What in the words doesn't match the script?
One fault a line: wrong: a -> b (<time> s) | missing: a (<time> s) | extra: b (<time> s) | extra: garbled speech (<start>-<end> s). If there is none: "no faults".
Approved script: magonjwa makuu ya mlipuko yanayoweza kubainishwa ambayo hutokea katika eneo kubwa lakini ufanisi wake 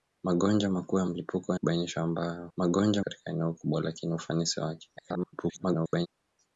missing: yanayoweza (1.5 s)
wrong: hutokea -> magonjwa (2.6 s)
extra: garbled speech (5.0-6.1 s)